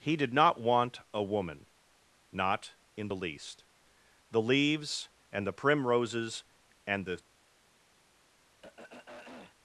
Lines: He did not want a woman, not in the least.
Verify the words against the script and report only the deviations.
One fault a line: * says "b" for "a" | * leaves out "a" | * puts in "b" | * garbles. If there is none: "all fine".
* puts in "The leaves and the primroses and the"